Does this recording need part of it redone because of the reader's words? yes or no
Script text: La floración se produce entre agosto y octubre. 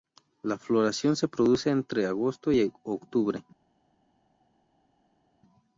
no